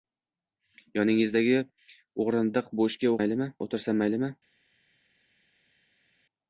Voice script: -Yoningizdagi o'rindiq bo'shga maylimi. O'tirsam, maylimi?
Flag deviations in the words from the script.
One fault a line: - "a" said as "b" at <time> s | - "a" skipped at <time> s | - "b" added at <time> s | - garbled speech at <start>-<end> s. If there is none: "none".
none